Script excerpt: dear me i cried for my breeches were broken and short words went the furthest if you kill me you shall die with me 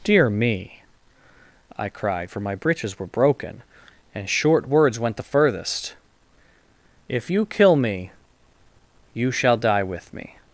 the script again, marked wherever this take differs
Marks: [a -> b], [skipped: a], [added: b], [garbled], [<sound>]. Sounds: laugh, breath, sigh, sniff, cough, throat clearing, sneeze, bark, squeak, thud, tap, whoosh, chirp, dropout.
dear me i cried for my breeches were broken and short words went the furthest if you kill me you shall die with me